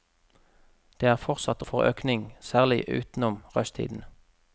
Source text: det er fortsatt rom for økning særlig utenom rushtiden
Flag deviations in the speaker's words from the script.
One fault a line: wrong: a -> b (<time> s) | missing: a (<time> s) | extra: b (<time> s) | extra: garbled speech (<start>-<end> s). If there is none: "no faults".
missing: rom (1.6 s)